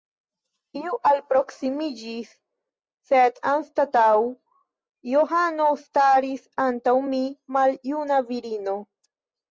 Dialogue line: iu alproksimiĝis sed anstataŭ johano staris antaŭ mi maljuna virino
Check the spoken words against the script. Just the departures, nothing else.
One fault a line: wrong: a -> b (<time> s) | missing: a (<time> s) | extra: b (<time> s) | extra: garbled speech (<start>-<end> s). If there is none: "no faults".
no faults